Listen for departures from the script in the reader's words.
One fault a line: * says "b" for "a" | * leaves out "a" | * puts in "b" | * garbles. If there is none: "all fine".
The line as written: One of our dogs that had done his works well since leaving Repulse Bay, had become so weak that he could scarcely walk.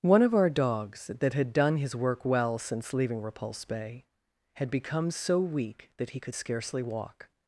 * says "work" for "works"